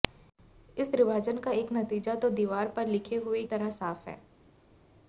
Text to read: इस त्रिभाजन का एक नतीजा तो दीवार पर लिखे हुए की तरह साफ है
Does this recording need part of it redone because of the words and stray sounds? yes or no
yes